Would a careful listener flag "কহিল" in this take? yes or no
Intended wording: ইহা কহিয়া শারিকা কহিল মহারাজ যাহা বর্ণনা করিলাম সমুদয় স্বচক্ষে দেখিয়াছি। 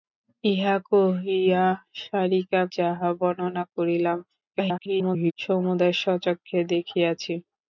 yes